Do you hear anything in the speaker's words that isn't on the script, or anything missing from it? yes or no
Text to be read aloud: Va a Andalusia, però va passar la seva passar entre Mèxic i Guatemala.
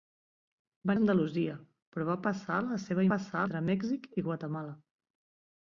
no